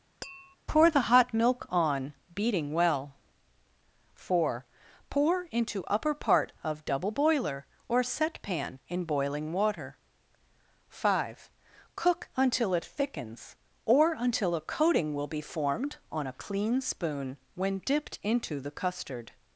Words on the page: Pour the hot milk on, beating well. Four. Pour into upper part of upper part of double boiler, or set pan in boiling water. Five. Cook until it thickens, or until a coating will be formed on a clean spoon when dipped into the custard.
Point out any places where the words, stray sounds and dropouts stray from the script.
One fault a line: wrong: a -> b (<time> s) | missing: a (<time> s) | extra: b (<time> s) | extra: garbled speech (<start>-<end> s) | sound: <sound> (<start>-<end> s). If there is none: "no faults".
sound: tap (0.2-0.6 s)
missing: upper part of (6.9 s)